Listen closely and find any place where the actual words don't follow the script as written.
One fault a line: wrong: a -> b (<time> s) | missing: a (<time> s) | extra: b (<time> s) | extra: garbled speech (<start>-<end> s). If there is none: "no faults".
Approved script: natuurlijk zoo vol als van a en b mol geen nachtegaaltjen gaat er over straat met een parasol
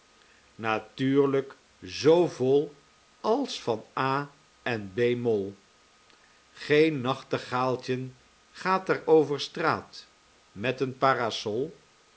no faults